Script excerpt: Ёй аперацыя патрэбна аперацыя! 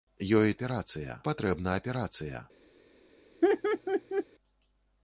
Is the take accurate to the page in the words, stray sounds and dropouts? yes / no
no